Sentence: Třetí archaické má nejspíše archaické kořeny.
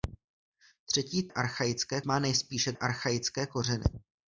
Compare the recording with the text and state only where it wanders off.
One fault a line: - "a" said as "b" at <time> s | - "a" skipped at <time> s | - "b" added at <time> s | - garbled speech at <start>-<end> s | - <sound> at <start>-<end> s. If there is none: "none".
none